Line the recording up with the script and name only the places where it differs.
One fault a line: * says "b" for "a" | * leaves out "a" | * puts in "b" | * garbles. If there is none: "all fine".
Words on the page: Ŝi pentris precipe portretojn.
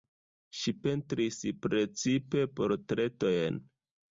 all fine